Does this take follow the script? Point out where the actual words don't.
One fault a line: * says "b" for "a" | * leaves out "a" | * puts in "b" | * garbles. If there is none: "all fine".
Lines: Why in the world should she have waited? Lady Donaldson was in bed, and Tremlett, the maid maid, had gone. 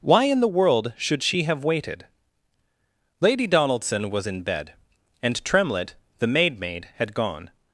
all fine